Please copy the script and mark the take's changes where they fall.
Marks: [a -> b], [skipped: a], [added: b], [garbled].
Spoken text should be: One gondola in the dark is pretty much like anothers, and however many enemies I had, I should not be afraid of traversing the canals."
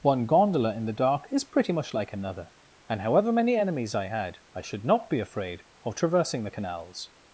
One gondola in the dark is pretty much like [anothers, -> another] and however many enemies I had, I should not be afraid of traversing the canals."